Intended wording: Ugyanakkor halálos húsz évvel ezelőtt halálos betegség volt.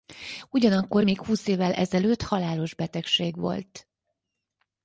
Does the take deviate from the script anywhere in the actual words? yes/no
yes